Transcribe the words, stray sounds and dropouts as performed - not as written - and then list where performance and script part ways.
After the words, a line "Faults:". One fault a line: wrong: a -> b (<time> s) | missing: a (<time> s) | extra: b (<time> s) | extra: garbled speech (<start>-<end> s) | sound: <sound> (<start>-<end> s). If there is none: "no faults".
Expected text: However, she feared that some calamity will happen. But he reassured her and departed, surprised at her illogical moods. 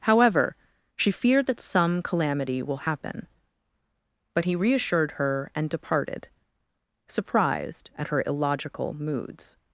However, she feared that some calamity will happen. But he reassured her and departed, surprised at her illogical moods.
Faults:
no faults